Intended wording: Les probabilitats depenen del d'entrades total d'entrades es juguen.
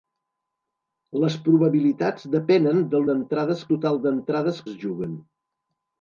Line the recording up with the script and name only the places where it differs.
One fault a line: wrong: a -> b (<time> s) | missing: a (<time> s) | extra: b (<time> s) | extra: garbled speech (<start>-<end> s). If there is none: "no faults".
no faults